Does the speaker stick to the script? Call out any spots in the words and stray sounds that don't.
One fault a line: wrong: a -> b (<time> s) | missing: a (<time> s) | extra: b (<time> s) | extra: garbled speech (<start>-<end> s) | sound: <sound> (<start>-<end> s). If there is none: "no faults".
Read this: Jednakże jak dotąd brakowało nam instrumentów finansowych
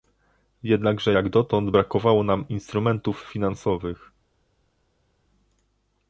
no faults